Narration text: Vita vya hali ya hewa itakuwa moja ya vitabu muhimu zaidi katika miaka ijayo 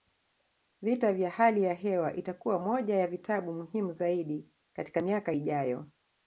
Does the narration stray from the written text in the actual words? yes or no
no